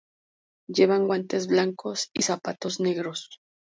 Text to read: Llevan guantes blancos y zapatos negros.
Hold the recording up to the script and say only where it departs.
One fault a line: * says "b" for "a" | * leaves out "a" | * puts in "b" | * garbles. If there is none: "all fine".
all fine